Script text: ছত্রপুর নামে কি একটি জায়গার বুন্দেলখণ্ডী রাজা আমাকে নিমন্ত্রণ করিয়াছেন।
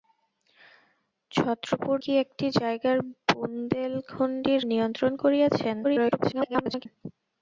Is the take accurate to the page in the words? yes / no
no